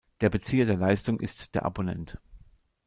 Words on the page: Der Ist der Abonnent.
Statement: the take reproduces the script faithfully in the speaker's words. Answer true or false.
false